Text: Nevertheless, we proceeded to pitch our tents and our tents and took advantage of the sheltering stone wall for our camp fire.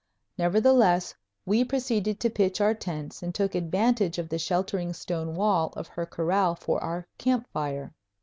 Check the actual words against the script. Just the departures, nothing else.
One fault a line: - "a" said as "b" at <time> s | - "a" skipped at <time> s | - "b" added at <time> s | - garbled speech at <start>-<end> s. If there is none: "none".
- "our tents and" skipped at 3.4 s
- "of her corral" added at 5.8 s